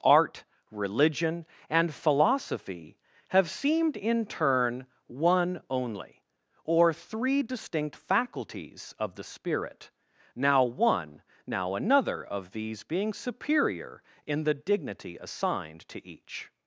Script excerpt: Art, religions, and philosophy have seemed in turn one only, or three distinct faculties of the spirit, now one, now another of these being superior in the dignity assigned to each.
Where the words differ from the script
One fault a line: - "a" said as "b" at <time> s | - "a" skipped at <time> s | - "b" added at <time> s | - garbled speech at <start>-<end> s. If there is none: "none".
- "religions" said as "religion" at 0.7 s